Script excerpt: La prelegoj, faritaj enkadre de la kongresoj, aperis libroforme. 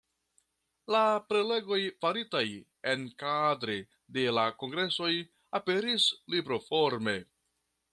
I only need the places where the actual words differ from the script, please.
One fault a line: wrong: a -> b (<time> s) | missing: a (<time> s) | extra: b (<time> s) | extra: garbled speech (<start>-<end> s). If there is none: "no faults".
no faults